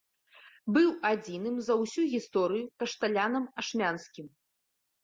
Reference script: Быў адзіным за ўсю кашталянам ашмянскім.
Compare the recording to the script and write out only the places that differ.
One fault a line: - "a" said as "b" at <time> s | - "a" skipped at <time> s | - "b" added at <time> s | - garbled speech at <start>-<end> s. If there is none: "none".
- "гісторыю" added at 2.1 s